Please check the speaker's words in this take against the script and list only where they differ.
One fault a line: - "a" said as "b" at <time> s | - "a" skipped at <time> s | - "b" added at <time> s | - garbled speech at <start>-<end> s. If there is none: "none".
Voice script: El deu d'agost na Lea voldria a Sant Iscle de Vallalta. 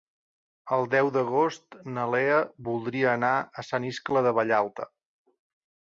- "anar" added at 3.2 s